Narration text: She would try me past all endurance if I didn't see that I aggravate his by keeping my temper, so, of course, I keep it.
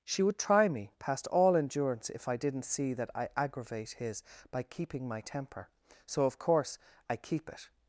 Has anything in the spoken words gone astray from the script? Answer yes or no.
no